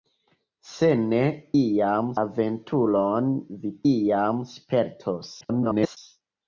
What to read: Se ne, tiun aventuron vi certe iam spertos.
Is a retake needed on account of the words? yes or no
yes